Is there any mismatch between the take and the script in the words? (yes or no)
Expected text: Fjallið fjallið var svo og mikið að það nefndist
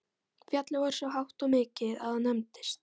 yes